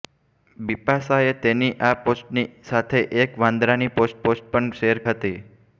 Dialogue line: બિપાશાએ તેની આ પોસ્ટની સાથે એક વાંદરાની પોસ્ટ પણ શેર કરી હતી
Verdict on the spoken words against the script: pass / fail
fail